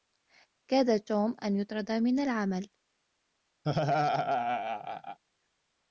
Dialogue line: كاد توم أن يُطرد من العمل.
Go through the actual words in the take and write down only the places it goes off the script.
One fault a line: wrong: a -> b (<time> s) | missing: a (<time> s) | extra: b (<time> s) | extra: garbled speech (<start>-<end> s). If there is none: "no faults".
no faults